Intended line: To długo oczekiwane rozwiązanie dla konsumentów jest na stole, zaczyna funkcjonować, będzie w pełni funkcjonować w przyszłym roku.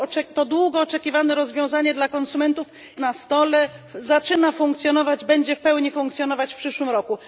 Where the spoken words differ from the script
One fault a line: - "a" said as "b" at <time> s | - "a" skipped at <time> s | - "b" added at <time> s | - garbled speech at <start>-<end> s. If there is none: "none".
- "jest" skipped at 2.7 s